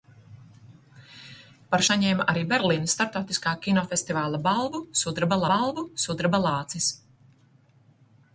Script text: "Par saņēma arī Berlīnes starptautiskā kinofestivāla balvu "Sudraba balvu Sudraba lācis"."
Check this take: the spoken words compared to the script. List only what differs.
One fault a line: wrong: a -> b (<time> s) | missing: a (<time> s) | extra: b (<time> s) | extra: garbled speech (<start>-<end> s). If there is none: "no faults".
no faults